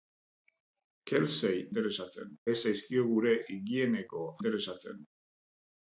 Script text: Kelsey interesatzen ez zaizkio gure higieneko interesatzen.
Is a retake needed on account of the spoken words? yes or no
no